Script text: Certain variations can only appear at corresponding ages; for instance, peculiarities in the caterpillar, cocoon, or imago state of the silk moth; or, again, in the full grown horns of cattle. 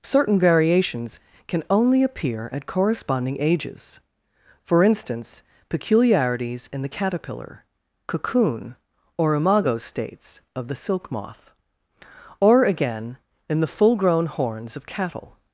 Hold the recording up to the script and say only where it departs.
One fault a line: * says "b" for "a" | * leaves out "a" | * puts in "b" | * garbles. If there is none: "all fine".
* says "states" for "state"